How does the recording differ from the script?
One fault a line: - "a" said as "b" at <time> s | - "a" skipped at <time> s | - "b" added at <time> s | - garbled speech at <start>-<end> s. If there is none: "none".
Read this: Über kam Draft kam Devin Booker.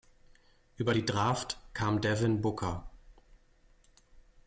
- "kam" said as "die" at 0.9 s